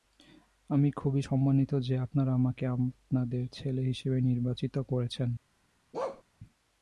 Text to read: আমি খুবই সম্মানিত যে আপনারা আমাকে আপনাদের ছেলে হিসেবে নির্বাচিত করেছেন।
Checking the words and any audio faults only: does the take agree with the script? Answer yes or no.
no